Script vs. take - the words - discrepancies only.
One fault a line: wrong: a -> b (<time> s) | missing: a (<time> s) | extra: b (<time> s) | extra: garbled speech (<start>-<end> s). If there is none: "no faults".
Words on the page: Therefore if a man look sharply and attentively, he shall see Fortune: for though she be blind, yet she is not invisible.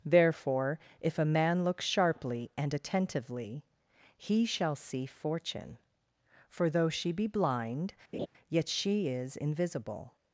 missing: not (9.4 s)